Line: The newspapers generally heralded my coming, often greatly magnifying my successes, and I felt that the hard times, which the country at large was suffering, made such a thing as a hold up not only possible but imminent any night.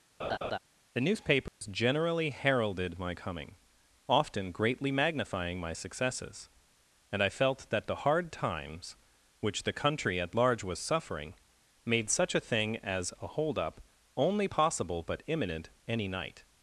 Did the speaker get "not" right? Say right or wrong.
wrong